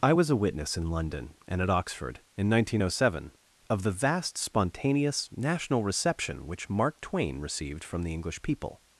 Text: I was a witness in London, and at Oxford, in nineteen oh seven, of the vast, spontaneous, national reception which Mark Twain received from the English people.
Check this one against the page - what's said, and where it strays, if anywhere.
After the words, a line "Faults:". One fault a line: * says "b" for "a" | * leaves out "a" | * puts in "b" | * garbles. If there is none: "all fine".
I was a witness in London, and at Oxford, in nineteen oh seven, of the vast, spontaneous, national reception which Mark Twain received from the English people.
Faults:
all fine